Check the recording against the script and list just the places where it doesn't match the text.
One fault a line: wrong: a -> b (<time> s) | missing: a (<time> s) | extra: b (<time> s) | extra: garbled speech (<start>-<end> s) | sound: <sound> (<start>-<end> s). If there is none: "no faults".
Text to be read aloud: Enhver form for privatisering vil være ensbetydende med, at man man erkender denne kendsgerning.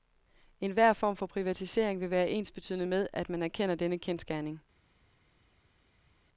missing: man (3.4 s)